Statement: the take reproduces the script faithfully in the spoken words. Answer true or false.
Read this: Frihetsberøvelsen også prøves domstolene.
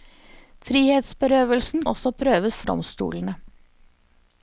true